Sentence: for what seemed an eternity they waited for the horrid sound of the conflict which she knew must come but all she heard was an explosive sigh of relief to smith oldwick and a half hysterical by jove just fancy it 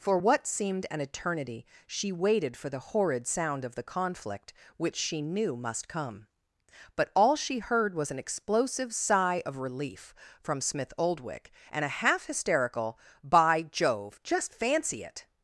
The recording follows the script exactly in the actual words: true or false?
false